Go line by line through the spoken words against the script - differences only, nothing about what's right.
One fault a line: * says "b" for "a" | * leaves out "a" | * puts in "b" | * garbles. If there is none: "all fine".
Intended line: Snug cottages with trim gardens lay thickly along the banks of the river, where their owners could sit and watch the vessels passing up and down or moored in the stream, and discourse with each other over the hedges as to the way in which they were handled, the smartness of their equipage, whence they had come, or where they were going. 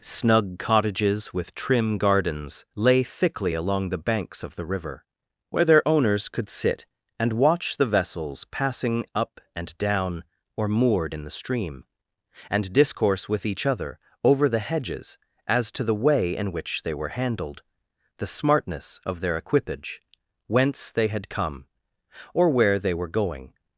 all fine